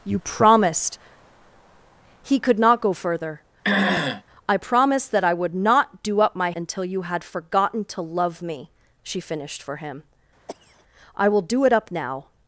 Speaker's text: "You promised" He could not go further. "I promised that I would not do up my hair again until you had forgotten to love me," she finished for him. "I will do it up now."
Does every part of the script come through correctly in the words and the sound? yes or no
no